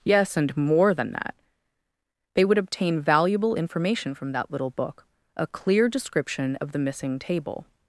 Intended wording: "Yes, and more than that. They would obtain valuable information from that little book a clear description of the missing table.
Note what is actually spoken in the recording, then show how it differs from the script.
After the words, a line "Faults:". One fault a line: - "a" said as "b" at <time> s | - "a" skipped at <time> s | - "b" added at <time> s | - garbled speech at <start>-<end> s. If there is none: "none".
"Yes, and more than that. They would obtain valuable information from that little book a clear description of the missing table.
Faults:
none